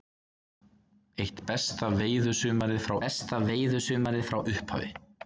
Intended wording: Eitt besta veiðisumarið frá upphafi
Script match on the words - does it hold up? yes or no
no